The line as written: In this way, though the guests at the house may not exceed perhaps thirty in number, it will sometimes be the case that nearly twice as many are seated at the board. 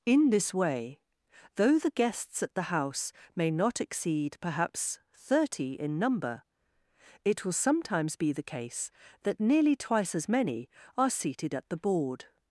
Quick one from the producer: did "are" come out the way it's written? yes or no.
yes